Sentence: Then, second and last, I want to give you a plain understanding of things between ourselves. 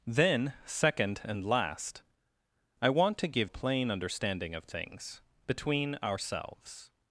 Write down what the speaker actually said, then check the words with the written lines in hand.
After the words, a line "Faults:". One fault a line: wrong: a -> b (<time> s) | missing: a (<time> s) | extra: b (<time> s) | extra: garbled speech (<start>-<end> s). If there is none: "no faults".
Then, second and last, I want to give a plain understanding of things between ourselves.
Faults:
missing: you (3.5 s)